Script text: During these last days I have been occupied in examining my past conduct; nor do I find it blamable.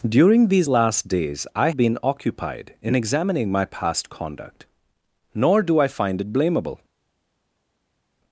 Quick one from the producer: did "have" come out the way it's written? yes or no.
no